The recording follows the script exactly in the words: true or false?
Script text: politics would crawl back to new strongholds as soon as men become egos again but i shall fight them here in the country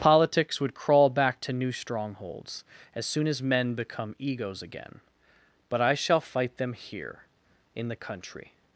true